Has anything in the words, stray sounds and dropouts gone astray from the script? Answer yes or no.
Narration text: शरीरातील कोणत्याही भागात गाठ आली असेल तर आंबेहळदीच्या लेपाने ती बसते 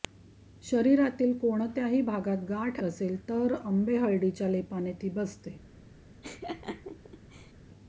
yes